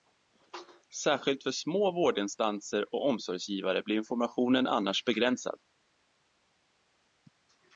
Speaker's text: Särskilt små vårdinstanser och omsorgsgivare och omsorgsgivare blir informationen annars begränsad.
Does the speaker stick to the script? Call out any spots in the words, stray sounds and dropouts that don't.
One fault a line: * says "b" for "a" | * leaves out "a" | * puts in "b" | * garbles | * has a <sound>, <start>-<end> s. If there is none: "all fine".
* puts in "för"
* leaves out "och omsorgsgivare"